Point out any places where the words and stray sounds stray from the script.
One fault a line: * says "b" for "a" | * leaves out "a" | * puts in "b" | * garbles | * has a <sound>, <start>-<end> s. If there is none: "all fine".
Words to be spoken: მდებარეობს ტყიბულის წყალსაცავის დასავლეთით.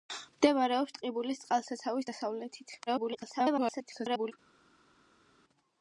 * garbles